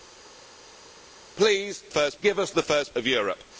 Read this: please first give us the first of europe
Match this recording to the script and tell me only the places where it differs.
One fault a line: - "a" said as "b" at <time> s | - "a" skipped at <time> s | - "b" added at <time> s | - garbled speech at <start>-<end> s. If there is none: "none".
none